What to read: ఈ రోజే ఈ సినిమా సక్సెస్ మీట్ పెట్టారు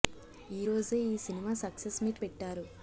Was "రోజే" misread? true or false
false